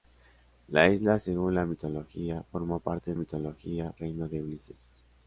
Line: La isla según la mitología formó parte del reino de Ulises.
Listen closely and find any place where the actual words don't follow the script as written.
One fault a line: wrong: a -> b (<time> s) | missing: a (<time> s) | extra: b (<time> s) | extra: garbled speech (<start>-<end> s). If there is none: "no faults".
wrong: del -> mitología (3.1 s)